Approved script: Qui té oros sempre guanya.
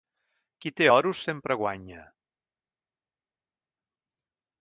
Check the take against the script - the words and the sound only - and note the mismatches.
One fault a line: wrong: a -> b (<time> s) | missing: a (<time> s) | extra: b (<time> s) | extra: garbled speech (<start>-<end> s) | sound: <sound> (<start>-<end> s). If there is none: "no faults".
no faults